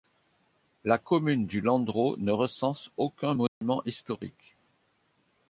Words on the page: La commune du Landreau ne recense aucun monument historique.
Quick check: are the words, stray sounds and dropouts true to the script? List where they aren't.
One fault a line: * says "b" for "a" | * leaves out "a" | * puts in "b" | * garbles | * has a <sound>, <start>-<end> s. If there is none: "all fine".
* has a dropout, 3.5-3.6 s